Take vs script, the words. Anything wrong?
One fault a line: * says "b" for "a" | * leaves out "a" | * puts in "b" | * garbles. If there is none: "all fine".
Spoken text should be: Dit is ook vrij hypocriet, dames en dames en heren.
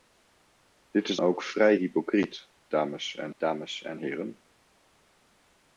all fine